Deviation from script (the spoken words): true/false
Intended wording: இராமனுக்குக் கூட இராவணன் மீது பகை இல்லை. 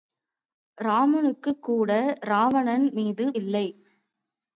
true